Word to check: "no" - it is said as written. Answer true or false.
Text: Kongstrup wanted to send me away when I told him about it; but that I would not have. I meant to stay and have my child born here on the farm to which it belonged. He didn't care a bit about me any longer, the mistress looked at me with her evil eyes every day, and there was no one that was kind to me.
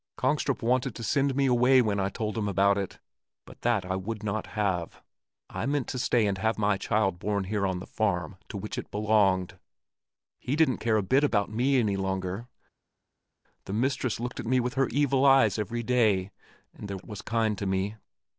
false